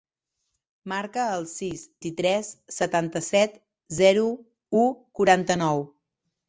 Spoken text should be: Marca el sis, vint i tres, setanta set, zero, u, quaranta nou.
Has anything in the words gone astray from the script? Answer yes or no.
yes